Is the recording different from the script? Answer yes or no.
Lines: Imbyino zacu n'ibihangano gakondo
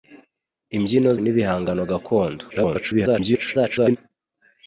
yes